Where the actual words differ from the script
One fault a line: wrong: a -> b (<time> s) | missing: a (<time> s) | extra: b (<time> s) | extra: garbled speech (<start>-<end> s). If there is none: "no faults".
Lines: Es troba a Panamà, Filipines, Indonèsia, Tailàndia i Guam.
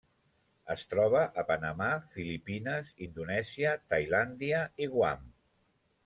no faults